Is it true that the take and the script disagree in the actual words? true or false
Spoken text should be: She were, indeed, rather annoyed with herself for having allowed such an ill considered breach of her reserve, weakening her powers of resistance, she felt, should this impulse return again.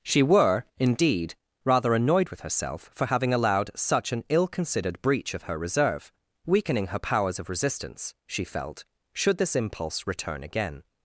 false